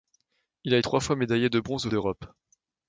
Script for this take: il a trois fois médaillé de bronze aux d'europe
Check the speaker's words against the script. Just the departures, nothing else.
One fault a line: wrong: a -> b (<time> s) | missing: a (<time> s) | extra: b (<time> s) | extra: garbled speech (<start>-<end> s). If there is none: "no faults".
no faults